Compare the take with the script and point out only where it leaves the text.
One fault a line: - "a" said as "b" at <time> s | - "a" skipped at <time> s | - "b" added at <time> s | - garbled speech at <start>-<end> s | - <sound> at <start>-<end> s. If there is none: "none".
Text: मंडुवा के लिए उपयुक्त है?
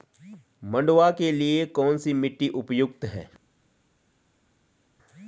- "कौन सी मिट्टी" added at 1.6 s